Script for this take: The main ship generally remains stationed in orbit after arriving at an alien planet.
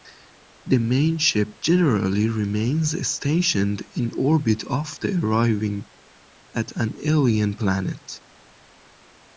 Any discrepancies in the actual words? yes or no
no